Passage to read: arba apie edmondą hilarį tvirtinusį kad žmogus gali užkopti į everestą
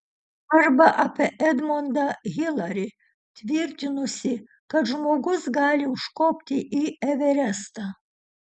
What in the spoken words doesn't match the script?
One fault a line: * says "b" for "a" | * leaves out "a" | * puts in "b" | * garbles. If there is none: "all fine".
all fine